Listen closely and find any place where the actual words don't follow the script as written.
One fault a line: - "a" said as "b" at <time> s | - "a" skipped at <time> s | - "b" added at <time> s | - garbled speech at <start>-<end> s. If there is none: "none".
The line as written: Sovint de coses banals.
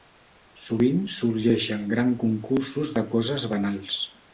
- "sorgeixen gran concursos" added at 1.2 s